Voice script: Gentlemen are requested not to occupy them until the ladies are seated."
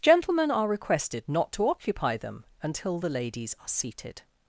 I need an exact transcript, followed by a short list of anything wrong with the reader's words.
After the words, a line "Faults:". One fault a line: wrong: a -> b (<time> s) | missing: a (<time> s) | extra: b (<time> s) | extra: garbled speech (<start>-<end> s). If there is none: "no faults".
Gentlemen are requested not to occupy them until the ladies are seated."
Faults:
no faults